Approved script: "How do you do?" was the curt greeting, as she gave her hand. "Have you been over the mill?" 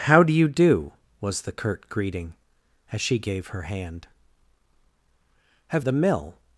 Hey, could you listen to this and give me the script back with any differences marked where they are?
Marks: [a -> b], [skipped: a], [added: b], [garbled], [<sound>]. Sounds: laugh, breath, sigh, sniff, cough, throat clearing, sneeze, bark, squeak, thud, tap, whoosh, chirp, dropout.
"How do you do?" was the curt greeting, as she gave her hand. "Have [skipped: you been over] the mill?"